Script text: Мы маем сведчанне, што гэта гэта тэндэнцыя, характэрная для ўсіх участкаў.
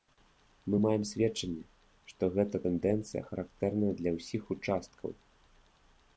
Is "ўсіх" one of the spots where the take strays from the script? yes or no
no